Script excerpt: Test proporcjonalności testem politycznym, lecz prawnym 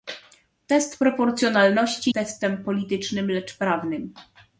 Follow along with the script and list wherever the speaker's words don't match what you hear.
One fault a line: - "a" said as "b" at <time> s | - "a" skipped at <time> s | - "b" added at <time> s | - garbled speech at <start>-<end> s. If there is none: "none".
none